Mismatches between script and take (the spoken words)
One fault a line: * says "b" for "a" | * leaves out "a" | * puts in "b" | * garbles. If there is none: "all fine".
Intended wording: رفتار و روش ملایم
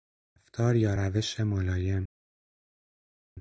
* says "یا" for "و"